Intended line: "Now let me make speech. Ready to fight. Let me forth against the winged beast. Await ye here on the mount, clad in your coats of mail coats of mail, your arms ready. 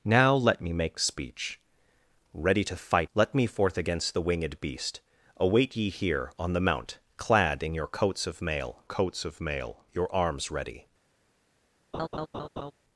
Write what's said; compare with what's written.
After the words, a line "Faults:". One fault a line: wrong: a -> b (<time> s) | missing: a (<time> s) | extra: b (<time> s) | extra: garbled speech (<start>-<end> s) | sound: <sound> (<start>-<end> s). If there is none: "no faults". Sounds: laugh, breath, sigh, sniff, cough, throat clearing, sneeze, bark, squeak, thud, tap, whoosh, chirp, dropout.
"Now let me make speech. Ready to fight. Let me forth against the winged beast. Await ye here on the mount, clad in your coats of mail coats of mail, your arms ready.
Faults:
sound: laugh (11.9-12.7 s)